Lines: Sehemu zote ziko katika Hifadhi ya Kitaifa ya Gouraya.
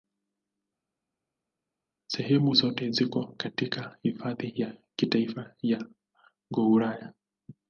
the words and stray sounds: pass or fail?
pass